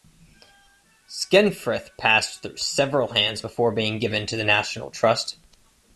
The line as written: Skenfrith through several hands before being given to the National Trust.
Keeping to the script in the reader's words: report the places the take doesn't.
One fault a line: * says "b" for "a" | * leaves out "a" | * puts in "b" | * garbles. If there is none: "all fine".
* puts in "passed"